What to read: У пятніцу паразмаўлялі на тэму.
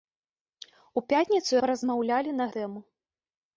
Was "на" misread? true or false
false